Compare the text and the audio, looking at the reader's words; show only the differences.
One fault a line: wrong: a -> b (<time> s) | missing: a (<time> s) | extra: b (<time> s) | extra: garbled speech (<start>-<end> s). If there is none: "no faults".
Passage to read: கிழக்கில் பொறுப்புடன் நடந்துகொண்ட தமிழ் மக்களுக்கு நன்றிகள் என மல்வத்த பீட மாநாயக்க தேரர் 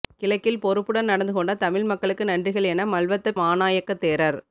missing: பீட (3.4 s)